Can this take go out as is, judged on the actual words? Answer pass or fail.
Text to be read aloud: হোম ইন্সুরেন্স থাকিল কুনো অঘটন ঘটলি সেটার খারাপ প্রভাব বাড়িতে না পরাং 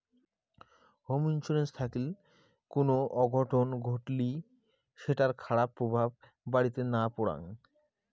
pass